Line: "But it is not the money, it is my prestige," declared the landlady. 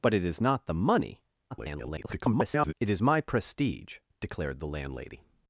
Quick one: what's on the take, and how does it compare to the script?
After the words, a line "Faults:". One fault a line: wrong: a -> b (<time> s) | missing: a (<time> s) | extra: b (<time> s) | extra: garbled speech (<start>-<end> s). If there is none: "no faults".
"But it is not the money, [garbled] it is my prestige," declared the landlady.
Faults:
extra: garbled speech (1.5-2.7 s)